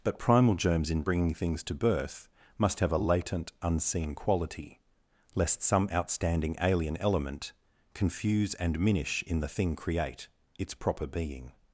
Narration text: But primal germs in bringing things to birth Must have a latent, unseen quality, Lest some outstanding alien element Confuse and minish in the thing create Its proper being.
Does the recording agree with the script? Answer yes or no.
yes